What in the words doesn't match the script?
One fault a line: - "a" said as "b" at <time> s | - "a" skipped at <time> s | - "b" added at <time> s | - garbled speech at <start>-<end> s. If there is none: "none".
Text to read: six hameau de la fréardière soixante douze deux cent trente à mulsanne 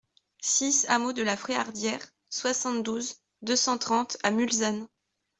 none